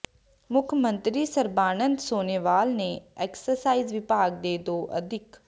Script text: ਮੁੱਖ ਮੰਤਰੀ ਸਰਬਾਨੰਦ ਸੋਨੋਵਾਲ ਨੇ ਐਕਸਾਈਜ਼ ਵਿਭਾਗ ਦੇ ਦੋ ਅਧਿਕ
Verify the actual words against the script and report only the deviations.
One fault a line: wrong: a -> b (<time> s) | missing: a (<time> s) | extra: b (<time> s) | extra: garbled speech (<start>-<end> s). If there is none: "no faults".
no faults